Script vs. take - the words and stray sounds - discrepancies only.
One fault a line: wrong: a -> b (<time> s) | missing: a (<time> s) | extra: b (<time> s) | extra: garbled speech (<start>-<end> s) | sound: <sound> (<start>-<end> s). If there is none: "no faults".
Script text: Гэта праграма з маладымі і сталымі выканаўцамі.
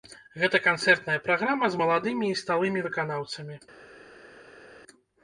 extra: канцэртная (0.7 s)